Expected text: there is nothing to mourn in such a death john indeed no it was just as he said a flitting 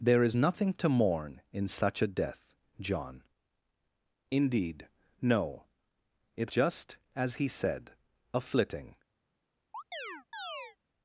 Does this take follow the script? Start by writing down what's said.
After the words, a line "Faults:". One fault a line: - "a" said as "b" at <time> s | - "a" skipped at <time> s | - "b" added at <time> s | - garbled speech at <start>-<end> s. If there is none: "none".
there is nothing to mourn in such a death john indeed no it just as he said a flitting
Faults:
- "was" skipped at 6.5 s